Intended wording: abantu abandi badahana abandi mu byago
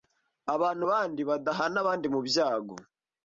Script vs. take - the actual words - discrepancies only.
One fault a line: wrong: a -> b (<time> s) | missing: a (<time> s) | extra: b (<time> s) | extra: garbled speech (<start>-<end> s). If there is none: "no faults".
no faults